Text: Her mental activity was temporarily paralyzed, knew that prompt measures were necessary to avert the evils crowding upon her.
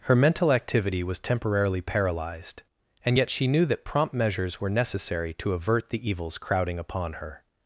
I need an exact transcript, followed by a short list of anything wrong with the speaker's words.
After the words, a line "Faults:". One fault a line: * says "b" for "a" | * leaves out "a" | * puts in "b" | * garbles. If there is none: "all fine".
Her mental activity was temporarily paralyzed, and yet she knew that prompt measures were necessary to avert the evils crowding upon her.
Faults:
* puts in "and yet she"